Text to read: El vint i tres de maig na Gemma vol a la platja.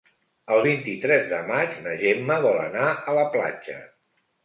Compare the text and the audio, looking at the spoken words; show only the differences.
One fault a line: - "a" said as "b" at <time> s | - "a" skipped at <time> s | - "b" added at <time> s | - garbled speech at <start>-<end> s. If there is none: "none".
- "anar" added at 2.7 s